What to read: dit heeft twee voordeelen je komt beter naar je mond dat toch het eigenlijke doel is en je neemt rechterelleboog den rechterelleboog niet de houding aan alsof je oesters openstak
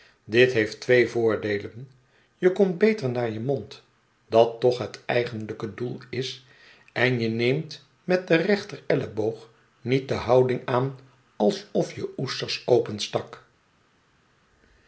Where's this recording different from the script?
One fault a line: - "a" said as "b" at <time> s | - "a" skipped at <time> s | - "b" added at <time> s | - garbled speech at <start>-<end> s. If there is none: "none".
- "rechterelleboog" said as "met" at 8.0 s